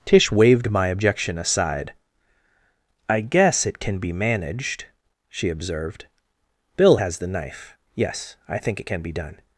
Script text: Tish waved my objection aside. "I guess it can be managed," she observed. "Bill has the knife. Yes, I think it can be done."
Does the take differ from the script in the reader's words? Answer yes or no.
no